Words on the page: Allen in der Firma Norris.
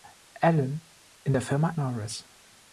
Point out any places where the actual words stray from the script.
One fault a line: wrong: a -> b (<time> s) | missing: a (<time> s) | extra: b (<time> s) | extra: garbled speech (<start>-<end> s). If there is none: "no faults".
no faults